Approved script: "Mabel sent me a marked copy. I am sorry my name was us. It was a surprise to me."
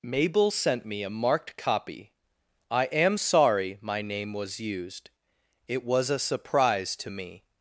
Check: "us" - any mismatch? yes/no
yes